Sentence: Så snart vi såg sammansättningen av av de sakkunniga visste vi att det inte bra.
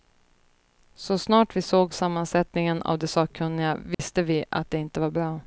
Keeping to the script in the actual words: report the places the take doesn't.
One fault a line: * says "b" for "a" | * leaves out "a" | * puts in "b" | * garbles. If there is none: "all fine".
* leaves out "av"
* puts in "var"